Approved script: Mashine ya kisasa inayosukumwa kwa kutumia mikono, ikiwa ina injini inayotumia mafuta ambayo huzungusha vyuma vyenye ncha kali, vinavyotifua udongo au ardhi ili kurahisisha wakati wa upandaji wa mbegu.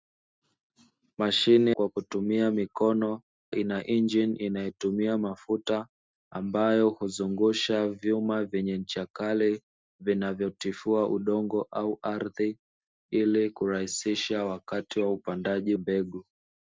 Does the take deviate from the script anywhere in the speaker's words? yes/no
yes